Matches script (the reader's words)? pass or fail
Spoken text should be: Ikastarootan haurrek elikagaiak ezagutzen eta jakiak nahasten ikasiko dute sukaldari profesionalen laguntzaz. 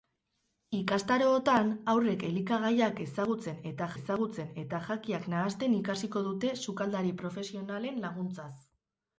fail